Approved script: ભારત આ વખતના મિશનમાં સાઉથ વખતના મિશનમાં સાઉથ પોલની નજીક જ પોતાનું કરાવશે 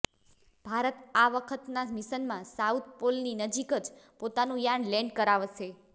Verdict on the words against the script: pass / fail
fail